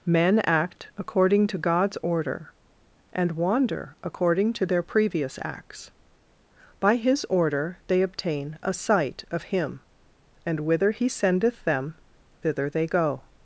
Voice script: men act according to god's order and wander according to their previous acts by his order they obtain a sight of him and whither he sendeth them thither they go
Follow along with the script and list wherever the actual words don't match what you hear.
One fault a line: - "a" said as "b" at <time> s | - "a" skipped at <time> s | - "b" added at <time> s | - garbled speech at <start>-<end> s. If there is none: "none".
none